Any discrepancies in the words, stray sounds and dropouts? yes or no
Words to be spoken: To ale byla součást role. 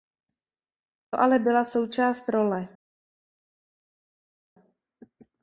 no